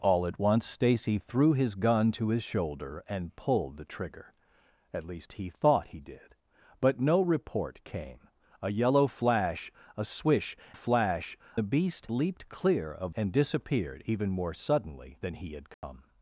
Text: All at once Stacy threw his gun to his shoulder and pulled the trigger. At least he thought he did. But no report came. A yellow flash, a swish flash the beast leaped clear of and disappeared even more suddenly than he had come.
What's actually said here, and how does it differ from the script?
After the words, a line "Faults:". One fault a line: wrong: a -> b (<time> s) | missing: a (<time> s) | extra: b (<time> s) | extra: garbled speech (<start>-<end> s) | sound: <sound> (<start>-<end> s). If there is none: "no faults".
All at once Stacy threw his gun to his shoulder and pulled the trigger. At least he thought he did. But no report came. A yellow flash, a swish flash the beast leaped clear of and disappeared even more suddenly than he had come.
Faults:
sound: dropout (15.7-15.8 s)